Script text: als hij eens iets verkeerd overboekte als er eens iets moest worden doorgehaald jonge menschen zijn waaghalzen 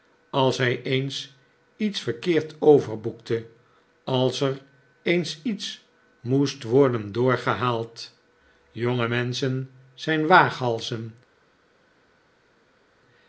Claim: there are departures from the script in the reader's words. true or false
false